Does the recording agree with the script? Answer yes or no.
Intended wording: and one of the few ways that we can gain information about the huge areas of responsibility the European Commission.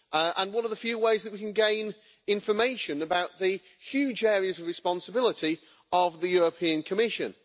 no